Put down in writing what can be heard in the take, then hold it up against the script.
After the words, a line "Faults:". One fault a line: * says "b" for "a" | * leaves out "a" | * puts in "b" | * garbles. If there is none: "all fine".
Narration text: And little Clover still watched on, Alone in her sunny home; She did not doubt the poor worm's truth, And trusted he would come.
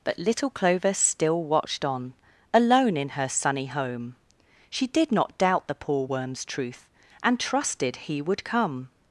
But little Clover still watched on, Alone in her sunny home; She did not doubt the poor worm's truth, And trusted he would come.
Faults:
* says "But" for "And"